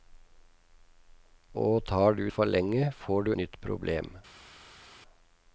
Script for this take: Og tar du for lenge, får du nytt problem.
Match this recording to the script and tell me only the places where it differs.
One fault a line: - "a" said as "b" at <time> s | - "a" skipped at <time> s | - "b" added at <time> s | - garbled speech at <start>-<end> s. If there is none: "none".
none